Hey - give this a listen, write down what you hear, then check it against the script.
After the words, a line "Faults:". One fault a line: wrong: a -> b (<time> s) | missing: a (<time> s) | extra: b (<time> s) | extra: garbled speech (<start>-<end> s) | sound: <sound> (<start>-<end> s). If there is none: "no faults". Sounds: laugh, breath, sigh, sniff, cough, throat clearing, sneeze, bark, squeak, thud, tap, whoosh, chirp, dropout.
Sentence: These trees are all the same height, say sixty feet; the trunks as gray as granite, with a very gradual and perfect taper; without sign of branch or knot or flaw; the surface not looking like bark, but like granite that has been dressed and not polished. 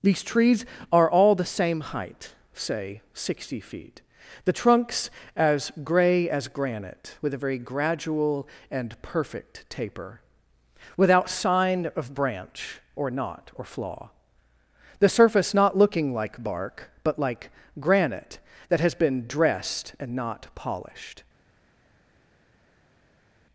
These trees are all the same height, say sixty feet; the trunks as gray as granite, with a very gradual and perfect taper; without sign of branch or knot or flaw; the surface not looking like bark, but like granite that has been dressed and not polished.
Faults:
no faults